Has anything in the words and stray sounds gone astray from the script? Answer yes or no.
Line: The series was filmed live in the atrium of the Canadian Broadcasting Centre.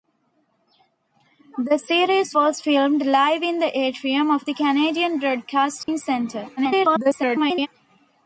yes